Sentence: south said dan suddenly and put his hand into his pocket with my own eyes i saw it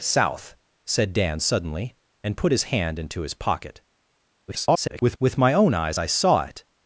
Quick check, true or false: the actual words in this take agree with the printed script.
false